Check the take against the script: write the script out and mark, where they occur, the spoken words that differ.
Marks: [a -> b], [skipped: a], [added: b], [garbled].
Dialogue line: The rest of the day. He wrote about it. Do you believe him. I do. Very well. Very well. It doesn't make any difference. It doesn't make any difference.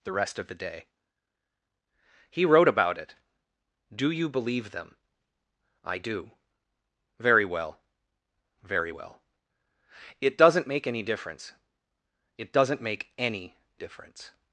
The rest of the day. He wrote about it. Do you believe [him. -> them] I do. Very well. Very well. It doesn't make any difference. It doesn't make any difference.